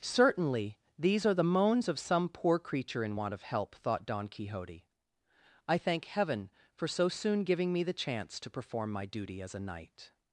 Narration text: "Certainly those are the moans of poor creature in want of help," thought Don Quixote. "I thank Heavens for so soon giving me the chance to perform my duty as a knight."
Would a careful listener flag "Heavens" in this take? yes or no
yes